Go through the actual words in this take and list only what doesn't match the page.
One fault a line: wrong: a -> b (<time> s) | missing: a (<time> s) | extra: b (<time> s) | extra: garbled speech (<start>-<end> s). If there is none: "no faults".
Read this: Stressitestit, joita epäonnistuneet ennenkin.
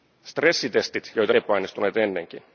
no faults